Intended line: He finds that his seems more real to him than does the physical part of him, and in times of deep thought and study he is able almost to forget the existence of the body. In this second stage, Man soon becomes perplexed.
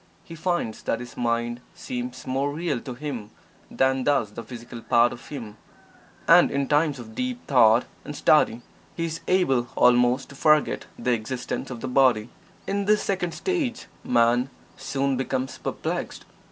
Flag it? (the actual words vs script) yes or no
yes